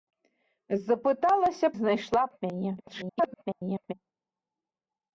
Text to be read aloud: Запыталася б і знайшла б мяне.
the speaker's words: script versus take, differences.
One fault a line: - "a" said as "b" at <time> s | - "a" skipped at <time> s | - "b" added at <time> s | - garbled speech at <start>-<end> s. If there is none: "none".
- "б" skipped at 1.7 s
- garbled speech at 2.8-3.9 s